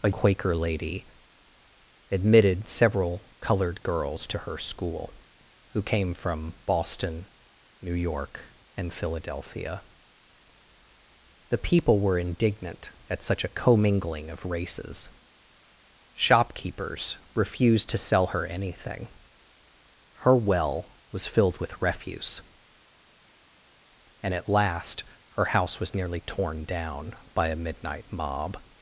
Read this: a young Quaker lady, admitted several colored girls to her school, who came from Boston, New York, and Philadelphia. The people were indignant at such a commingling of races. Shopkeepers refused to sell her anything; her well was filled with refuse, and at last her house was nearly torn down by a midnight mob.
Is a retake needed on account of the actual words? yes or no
yes